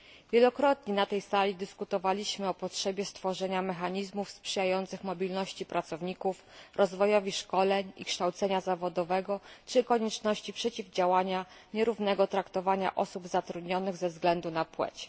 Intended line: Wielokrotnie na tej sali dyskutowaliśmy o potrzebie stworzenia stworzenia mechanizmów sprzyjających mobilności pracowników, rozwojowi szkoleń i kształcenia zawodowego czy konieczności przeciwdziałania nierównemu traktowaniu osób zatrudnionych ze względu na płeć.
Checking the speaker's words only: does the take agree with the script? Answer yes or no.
no